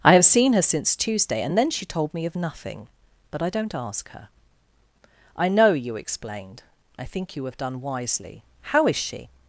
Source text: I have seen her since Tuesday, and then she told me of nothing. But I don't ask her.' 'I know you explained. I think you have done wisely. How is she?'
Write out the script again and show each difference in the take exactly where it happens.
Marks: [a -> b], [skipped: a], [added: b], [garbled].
I have seen her since Tuesday, and then she told me of nothing. But I don't ask her.' 'I know you explained. I think you have done wisely. How is she?'